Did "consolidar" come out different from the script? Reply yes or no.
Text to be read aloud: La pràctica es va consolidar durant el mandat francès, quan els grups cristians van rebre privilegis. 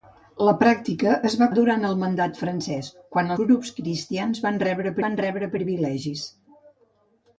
yes